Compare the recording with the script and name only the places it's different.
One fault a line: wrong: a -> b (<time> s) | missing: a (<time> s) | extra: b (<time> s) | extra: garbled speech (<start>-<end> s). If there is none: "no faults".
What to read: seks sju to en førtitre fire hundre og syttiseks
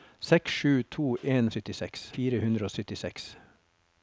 wrong: førtitre -> syttiseks (1.5 s)